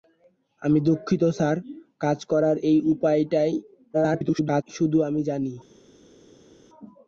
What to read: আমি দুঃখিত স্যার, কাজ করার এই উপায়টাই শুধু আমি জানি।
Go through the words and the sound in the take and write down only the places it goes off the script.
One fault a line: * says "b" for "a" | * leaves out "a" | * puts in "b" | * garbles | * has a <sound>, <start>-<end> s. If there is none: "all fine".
* garbles